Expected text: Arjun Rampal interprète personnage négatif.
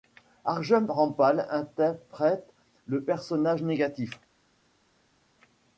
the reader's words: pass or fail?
fail